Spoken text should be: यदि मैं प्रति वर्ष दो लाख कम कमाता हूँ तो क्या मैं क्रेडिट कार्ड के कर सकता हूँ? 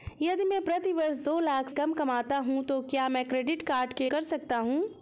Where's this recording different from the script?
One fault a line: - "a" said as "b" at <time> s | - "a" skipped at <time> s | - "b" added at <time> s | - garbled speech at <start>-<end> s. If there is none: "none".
none